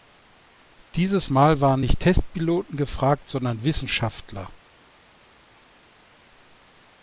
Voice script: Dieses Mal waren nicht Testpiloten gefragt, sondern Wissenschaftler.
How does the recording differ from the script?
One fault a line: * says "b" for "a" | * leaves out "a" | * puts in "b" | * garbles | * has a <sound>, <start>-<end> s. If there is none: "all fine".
all fine